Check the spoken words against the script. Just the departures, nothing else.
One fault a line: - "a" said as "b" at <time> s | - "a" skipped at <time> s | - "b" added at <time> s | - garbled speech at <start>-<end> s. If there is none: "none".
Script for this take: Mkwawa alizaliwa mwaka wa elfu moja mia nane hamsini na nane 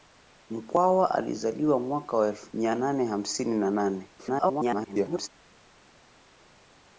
- "moja" skipped at 2.5 s
- garbled speech at 4.2-5.3 s